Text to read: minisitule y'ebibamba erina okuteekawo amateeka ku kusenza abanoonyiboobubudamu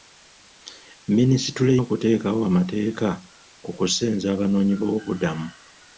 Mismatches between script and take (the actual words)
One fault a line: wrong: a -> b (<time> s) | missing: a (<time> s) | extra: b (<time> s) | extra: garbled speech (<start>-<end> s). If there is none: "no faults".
missing: y'ebibamba erina (1.7 s)